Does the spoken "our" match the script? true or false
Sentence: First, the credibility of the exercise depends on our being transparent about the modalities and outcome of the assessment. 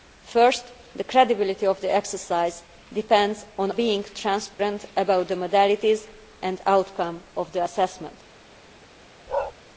false